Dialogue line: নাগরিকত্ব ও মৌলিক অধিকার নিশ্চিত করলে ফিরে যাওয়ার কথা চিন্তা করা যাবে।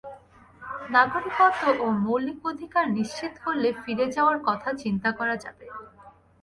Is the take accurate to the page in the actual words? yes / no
yes